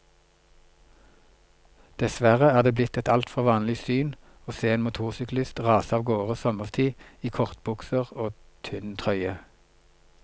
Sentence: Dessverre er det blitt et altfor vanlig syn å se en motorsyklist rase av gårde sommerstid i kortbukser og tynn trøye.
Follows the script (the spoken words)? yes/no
yes